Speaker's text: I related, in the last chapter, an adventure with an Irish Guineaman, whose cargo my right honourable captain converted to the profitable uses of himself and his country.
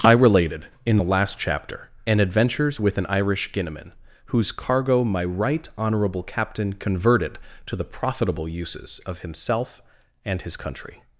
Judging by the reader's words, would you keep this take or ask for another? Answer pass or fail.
fail